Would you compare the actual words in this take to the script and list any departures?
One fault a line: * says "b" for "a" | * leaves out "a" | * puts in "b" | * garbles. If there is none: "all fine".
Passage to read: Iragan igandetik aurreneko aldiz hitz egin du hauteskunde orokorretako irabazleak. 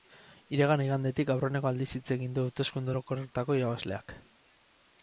all fine